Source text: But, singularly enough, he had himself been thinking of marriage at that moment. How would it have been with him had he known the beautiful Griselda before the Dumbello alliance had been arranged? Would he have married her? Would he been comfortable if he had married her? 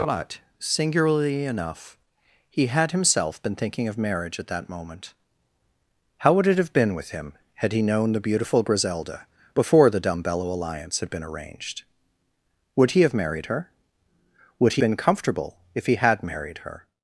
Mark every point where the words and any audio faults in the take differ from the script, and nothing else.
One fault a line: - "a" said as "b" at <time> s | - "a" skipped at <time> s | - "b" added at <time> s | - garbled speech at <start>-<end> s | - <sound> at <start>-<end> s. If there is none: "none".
none